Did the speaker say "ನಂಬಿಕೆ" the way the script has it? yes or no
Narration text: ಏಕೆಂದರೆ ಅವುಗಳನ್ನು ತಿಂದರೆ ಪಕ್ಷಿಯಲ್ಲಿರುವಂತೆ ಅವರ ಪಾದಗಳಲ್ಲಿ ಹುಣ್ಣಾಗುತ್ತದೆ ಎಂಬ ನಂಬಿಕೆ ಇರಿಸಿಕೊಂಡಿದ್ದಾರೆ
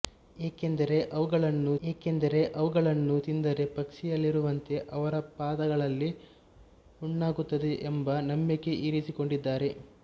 yes